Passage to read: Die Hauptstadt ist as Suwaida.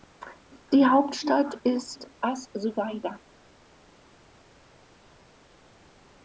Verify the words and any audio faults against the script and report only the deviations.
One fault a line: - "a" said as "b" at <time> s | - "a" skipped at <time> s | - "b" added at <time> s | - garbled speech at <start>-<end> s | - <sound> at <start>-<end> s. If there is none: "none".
none